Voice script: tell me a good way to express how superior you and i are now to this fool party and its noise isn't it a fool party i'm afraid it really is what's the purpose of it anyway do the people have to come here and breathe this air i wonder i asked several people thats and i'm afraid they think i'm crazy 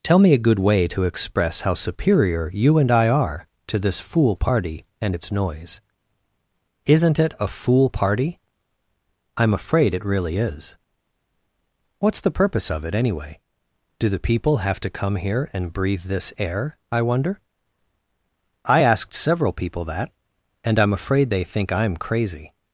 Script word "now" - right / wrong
wrong